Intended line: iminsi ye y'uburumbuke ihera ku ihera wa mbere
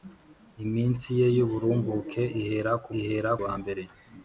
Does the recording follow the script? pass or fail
pass